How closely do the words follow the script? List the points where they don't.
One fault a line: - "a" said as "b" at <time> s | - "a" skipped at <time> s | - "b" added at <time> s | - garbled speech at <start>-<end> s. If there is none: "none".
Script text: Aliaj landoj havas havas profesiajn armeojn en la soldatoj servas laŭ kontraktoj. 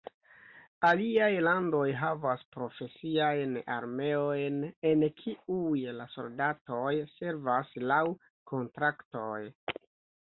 - "havas" skipped at 2.4 s
- "kiuj" added at 5.2 s